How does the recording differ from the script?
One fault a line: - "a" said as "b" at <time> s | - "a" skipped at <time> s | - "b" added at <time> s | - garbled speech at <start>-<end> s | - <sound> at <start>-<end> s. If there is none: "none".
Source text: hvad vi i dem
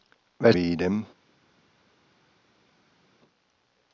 none